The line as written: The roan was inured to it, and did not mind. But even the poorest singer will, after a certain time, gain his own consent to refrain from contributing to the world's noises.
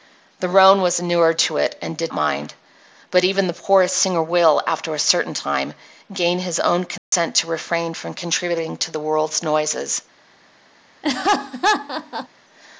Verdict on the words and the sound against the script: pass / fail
fail